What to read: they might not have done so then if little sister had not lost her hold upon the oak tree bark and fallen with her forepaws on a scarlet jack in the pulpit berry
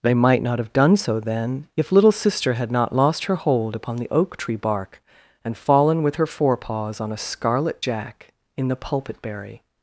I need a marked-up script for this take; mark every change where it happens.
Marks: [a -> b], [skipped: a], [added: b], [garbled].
they might not have done so then if little sister had not lost her hold upon the oak tree bark and fallen with her forepaws on a scarlet jack in the pulpit berry